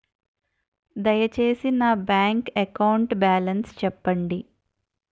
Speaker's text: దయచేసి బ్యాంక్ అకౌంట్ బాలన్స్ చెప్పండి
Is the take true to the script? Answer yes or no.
no